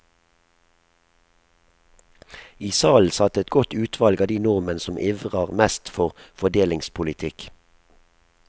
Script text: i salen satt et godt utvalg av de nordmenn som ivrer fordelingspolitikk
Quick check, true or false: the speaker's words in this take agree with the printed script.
false